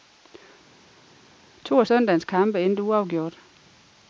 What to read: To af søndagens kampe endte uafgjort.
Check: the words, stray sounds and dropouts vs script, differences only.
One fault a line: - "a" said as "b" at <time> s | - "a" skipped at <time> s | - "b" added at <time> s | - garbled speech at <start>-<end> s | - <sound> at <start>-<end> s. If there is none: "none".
none